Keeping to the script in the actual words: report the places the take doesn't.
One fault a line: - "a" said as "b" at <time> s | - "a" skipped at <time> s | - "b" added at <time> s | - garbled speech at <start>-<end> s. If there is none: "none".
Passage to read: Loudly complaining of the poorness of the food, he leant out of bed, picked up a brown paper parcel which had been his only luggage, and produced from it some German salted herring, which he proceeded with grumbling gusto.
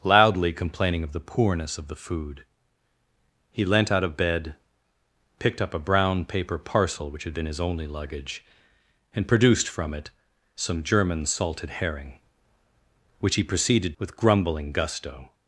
none